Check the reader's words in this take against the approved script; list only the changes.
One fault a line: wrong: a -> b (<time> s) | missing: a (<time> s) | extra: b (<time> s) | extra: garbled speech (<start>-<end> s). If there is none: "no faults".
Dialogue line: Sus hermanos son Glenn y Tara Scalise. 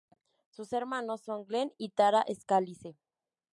no faults